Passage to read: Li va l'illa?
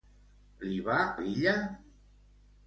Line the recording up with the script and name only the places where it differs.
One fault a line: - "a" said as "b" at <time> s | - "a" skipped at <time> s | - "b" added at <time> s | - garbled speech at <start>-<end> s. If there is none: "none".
none